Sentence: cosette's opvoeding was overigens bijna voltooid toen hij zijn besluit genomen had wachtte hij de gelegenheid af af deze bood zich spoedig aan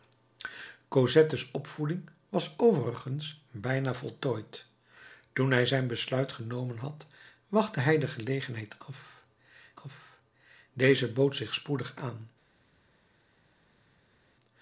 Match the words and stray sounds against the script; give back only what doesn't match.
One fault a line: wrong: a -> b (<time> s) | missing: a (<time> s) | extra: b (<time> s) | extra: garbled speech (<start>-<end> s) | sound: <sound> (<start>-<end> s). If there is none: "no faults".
no faults